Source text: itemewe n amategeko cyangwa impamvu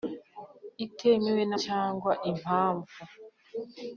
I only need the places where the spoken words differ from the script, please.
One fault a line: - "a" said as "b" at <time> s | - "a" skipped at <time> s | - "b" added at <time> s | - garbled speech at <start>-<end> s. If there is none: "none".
- "amategeko" skipped at 1.5 s